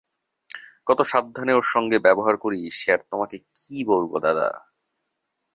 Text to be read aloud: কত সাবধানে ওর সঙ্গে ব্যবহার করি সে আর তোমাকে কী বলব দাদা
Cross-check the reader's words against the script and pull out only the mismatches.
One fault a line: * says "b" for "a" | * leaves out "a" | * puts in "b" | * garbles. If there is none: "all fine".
all fine